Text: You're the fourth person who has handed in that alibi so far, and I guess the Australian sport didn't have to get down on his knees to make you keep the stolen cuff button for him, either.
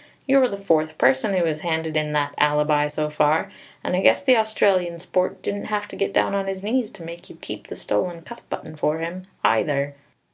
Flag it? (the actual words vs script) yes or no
no